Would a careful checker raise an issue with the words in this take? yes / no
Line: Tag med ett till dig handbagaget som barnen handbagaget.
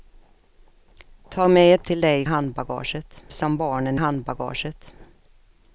no